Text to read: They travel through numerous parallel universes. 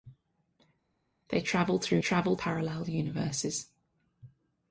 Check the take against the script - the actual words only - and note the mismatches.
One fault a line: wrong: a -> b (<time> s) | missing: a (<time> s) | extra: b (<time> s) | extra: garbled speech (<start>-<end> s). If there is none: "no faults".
wrong: numerous -> travel (2.0 s)